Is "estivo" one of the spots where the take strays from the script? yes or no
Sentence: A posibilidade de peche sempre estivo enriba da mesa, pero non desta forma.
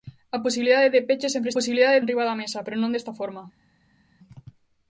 yes